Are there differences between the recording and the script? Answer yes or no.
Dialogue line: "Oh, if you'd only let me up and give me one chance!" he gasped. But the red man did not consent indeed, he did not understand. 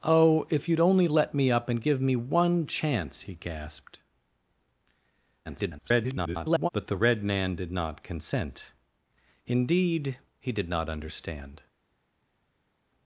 yes